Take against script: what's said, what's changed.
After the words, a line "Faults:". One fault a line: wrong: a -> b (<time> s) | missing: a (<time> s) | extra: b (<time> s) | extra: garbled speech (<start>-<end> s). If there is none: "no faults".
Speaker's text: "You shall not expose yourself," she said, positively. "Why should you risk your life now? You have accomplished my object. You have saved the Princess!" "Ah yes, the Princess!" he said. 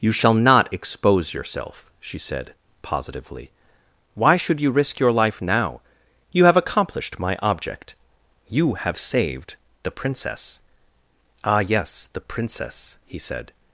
"You shall not expose yourself," she said, positively. "Why should you risk your life now? You have accomplished my object. You have saved the Princess!" "Ah yes, the Princess!" he said.
Faults:
no faults